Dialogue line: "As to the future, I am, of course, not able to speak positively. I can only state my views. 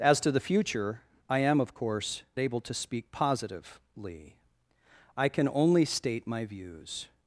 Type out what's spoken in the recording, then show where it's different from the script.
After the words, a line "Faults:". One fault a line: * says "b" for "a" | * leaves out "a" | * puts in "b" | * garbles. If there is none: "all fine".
"As to the future, I am, of course, able to speak positively. I can only state my views.
Faults:
* leaves out "not"